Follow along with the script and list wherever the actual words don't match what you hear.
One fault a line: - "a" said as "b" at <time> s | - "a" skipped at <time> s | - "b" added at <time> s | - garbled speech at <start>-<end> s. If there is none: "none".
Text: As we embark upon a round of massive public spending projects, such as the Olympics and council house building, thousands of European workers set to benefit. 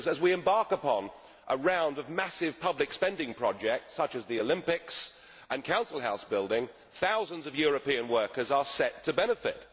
- "are" added at 8.5 s